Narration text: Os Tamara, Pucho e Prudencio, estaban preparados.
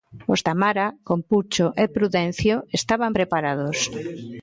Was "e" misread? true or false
false